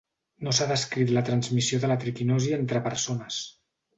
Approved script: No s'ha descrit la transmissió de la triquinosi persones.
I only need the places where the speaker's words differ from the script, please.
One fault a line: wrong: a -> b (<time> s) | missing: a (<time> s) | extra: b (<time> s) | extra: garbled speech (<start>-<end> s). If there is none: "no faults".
extra: entre (2.6 s)